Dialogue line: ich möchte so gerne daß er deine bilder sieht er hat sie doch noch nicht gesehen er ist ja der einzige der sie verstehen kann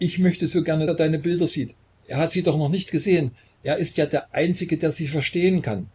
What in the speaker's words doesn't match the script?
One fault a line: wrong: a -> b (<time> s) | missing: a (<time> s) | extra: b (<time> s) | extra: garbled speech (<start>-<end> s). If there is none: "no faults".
missing: daß (0.9 s)